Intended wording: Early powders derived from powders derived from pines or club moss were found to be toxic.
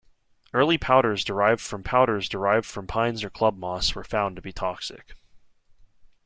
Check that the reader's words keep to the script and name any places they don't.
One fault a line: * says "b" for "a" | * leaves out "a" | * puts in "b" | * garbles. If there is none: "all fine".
all fine